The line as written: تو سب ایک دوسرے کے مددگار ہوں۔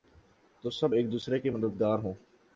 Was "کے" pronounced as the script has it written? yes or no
yes